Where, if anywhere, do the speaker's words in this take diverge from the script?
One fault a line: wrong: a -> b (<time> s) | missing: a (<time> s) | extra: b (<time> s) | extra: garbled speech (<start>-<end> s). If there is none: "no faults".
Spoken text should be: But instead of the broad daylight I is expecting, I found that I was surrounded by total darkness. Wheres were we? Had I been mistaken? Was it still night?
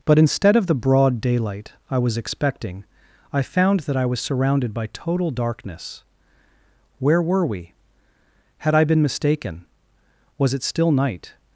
wrong: is -> was (2.0 s)
wrong: Wheres -> Where (7.0 s)